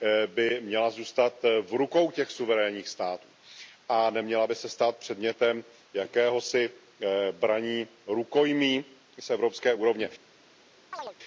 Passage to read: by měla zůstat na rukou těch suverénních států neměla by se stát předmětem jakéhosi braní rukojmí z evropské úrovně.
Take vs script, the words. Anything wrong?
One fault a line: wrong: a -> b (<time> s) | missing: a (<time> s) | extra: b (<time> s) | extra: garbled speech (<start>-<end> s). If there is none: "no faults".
wrong: na -> v (1.6 s)
extra: a (3.9 s)